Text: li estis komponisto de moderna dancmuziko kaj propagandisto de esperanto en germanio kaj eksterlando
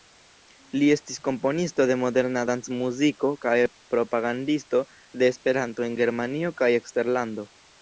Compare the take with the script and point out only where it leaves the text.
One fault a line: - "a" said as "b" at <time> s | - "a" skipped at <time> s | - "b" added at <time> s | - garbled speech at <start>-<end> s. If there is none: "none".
none